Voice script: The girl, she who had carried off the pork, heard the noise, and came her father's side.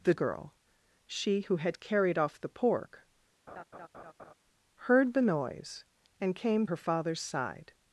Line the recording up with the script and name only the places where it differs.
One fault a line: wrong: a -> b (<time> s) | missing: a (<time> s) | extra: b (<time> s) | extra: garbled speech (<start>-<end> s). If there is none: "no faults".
no faults